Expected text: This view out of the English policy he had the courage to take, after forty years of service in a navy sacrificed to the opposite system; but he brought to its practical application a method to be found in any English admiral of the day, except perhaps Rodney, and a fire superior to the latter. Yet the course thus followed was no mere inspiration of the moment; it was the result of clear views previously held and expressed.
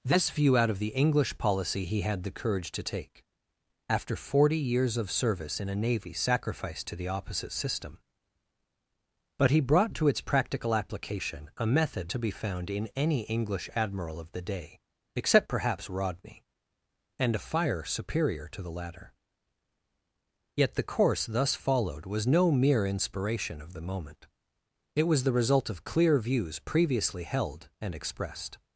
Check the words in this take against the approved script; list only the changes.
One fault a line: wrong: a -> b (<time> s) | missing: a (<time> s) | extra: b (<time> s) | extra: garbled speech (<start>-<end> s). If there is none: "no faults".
no faults